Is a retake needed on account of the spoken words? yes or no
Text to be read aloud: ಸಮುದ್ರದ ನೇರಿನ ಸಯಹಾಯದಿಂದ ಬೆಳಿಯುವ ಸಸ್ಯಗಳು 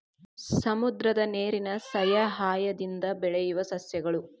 no